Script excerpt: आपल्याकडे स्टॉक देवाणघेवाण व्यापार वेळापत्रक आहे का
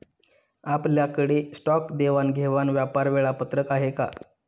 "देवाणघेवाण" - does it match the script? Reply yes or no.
yes